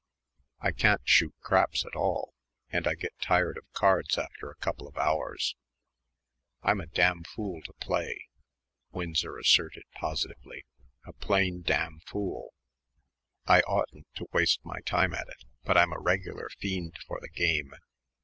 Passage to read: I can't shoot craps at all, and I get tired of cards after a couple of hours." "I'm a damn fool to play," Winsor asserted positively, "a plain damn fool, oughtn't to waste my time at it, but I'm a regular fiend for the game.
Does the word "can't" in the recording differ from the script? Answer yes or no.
no